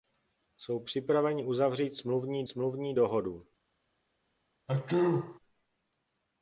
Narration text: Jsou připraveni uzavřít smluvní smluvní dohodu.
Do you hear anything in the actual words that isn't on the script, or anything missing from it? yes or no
no